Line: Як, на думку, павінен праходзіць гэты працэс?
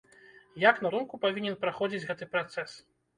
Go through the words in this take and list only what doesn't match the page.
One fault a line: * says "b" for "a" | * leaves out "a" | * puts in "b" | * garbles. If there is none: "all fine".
all fine